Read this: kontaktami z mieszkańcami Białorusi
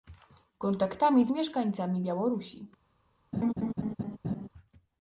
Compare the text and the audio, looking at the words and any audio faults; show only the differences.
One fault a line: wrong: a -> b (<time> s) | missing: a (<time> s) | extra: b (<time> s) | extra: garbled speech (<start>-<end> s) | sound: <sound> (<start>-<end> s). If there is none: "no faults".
sound: laugh (3.3-4.5 s)